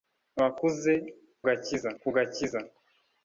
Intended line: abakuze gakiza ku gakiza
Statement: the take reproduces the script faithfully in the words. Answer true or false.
true